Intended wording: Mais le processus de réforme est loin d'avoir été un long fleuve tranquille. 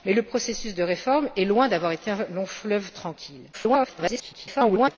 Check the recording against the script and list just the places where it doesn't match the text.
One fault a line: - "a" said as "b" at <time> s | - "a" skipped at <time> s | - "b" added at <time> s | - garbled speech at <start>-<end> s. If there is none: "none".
- garbled speech at 3.5-5.0 s